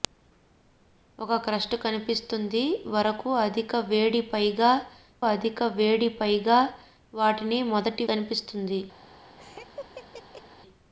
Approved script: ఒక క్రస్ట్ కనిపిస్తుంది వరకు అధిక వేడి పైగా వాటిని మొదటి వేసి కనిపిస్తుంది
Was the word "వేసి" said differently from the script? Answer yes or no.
yes